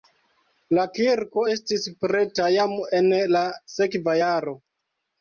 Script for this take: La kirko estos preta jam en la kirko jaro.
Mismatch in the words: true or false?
true